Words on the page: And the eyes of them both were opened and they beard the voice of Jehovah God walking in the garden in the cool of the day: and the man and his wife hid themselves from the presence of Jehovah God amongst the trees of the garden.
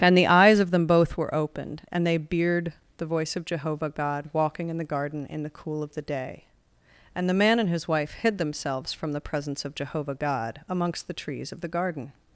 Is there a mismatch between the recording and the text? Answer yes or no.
no